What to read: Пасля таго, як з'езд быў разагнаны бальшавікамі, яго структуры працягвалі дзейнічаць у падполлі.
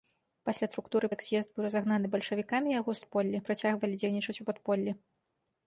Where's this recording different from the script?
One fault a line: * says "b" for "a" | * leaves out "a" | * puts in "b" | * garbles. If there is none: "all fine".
* says "структуры" for "таго"
* says "падполлі" for "структуры"